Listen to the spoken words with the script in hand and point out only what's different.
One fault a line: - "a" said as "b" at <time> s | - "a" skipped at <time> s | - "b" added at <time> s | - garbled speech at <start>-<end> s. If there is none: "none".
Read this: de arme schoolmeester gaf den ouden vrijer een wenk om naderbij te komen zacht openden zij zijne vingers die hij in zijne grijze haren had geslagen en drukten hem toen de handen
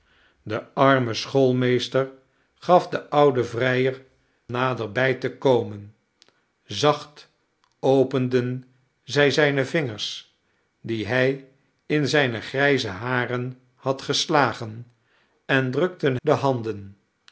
- "een wenk om" skipped at 4.0 s
- "hem toen" skipped at 16.2 s